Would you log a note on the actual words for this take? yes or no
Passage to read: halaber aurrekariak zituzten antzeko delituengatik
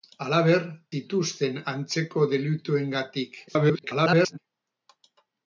yes